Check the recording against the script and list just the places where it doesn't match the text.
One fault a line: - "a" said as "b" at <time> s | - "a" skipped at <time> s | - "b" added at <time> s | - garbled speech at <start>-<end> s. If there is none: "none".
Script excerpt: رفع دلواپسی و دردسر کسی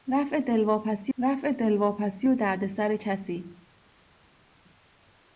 - "رفع دلواپسی" added at 1.2 s